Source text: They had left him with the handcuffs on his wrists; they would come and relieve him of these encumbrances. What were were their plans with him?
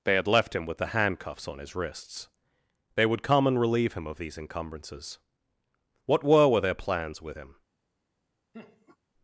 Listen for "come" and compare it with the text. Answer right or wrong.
right